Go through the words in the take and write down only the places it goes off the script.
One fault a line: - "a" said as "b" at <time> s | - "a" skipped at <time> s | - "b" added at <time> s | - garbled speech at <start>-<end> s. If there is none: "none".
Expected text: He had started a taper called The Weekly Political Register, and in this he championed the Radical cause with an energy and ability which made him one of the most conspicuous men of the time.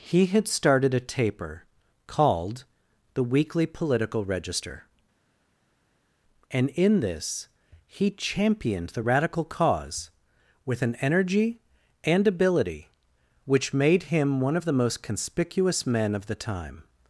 none